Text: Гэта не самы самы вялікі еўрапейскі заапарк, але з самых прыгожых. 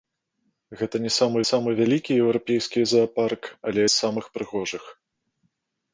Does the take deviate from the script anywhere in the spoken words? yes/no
no